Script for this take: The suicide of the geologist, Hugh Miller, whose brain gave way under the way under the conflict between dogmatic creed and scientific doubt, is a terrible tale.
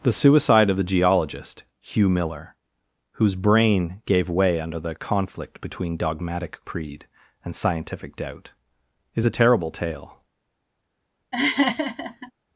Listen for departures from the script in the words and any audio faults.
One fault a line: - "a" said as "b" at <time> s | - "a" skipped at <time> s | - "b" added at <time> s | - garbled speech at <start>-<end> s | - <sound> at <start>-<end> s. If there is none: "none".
- "way under the" skipped at 4.9 s
- laugh at 11.3-12.3 s